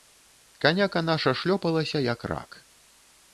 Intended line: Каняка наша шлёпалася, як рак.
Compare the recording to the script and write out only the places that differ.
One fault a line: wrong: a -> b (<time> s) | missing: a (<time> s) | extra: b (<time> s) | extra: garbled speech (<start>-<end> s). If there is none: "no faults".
no faults